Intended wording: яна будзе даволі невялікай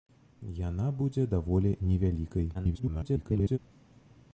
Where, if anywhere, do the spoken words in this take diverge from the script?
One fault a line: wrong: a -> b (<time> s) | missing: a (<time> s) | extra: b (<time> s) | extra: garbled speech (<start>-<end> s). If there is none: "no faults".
extra: garbled speech (2.5-3.6 s)